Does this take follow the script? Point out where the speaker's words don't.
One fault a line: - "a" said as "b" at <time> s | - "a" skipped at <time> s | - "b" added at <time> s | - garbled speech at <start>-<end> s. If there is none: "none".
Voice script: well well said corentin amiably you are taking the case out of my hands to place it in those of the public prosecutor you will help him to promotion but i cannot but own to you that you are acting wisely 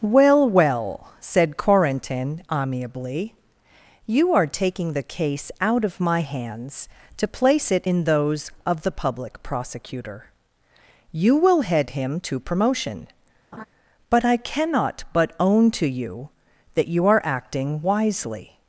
- "help" said as "head" at 11.6 s